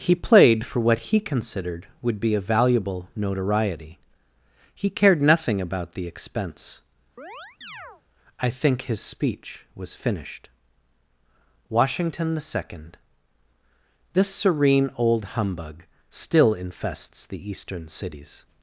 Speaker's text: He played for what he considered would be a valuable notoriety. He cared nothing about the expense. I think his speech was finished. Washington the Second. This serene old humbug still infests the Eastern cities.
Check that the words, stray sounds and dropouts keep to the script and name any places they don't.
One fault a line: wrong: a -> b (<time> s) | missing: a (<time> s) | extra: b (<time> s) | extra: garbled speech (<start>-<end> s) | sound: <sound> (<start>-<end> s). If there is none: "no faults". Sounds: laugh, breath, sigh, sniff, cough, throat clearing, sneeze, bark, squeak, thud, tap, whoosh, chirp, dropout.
sound: chirp (7.2-8.0 s)